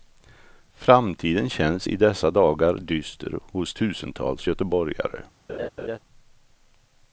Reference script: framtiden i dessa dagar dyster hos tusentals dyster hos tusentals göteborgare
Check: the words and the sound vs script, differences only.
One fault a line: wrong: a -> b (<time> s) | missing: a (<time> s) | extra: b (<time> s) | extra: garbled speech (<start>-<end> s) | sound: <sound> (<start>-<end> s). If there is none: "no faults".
extra: känns (1.5 s)
missing: dyster hos tusentals (4.5 s)
sound: laugh (5.5-6.0 s)